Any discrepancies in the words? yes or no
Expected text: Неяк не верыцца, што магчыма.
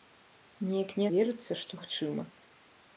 no